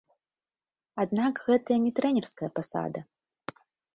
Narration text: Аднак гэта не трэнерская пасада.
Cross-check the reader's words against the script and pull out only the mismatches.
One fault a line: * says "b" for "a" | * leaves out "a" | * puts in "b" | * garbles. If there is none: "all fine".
all fine